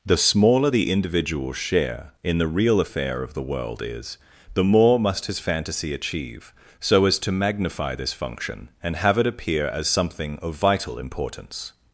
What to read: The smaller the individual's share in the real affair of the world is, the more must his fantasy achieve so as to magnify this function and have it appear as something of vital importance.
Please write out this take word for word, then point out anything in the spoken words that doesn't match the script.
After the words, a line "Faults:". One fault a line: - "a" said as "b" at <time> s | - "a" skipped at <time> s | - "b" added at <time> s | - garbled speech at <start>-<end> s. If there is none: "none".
The smaller the individual's share in the real affair of the world is, the more must his fantasy achieve so as to magnify this function and have it appear as something of vital importance.
Faults:
none